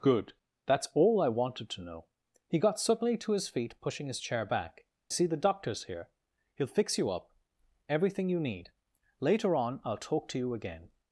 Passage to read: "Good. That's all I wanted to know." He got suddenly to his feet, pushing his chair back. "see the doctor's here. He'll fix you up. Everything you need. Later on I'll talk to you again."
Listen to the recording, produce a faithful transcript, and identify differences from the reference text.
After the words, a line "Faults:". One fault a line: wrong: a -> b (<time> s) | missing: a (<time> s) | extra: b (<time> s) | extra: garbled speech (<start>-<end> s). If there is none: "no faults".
"Good. That's all I wanted to know." He got suddenly to his feet, pushing his chair back. "see the doctor's here. He'll fix you up. Everything you need. Later on I'll talk to you again."
Faults:
no faults